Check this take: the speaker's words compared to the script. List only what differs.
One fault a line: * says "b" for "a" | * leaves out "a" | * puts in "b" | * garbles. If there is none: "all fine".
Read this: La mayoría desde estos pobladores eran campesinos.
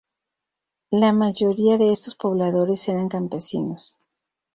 * says "de" for "desde"